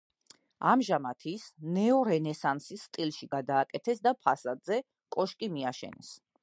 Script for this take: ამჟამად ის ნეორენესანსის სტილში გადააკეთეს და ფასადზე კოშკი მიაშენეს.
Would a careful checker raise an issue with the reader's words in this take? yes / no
no